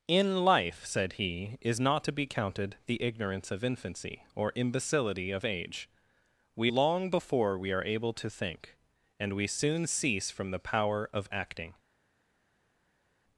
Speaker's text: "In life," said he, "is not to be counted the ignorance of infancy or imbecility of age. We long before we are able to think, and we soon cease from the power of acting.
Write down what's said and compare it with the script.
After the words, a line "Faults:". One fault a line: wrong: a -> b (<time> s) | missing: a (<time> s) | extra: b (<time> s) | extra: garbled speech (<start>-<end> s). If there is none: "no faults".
"In life," said he, "is not to be counted the ignorance of infancy or imbecility of age. We long before we are able to think, and we soon cease from the power of acting.
Faults:
no faults